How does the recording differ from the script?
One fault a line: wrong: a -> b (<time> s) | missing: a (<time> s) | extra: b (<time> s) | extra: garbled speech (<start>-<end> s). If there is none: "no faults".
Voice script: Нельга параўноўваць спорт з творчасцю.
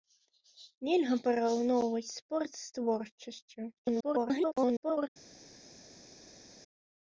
extra: garbled speech (3.8-5.1 s)